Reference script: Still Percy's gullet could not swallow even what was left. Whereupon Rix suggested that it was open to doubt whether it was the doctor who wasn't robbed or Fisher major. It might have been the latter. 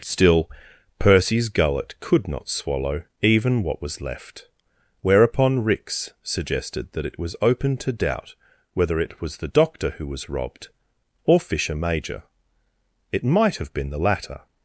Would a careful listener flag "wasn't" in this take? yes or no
yes